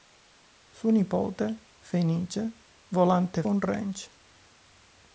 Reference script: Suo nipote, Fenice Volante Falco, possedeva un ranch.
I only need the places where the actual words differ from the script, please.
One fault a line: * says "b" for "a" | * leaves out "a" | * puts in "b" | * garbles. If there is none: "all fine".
* leaves out "Falco possedeva"